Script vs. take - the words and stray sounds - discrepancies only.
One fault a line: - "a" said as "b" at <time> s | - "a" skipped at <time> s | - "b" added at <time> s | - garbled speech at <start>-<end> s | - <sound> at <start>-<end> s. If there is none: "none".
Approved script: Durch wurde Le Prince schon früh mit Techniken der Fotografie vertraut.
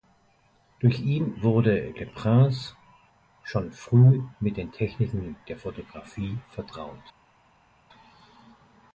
- "ihn" added at 1.0 s
- "den" added at 4.6 s